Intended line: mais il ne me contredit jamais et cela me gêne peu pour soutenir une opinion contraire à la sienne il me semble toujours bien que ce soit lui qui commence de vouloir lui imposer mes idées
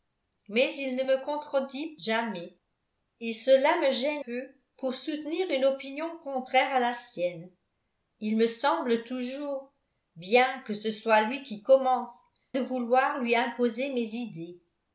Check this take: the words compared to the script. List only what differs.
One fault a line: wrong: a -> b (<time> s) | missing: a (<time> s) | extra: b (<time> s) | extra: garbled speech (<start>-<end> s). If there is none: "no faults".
no faults